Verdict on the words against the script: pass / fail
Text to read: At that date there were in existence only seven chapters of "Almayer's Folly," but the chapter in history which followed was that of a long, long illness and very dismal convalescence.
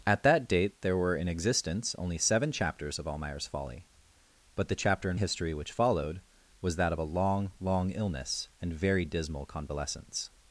pass